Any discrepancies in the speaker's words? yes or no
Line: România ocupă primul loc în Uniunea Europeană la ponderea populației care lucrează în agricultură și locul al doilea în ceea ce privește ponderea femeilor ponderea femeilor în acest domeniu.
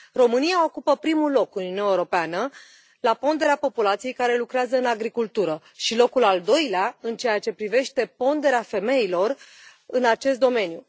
yes